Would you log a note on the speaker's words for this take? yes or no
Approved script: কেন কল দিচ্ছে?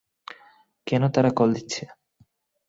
yes